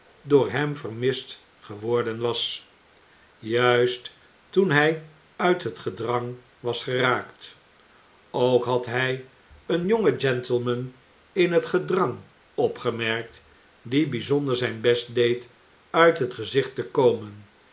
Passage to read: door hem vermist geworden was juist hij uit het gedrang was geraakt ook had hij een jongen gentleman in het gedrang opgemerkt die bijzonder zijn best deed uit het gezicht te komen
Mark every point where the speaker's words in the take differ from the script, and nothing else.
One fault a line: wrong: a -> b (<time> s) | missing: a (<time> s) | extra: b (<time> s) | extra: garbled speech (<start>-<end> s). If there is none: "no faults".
extra: toen (4.5 s)